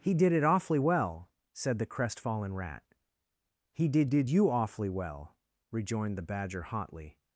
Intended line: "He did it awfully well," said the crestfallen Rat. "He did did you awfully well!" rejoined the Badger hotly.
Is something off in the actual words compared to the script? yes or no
no